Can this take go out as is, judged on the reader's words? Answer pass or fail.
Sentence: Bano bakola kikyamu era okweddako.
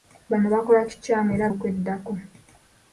pass